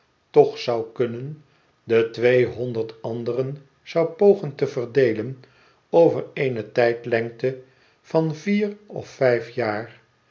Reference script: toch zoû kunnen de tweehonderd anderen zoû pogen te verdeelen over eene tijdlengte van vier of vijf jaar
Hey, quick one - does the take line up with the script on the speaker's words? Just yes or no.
yes